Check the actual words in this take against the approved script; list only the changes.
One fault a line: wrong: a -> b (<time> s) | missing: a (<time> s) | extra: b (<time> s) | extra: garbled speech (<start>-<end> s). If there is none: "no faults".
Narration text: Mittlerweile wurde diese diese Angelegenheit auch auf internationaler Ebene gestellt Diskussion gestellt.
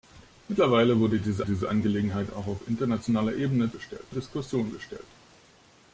no faults